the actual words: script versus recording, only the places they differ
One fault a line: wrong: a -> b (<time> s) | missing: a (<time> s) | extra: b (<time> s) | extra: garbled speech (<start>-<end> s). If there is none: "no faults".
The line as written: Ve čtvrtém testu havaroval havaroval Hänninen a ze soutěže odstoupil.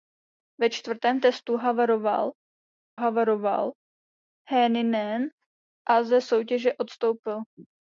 no faults